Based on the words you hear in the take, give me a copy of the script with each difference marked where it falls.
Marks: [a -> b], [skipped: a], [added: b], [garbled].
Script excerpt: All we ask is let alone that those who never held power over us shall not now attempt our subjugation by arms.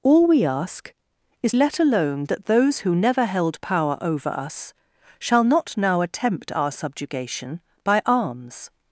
All we ask is let alone that those who never held power over us shall not now attempt our subjugation by arms.